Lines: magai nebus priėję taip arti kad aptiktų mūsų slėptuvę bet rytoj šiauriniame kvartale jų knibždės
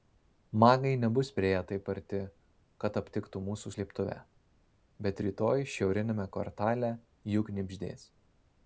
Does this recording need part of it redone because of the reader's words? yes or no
no